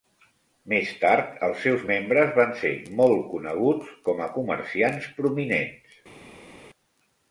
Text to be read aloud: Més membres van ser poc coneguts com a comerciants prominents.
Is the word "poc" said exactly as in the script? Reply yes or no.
no